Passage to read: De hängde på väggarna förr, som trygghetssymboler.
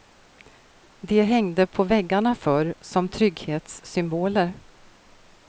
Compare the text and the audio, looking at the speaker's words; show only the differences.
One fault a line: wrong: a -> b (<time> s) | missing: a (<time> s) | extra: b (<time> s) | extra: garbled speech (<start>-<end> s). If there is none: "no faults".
no faults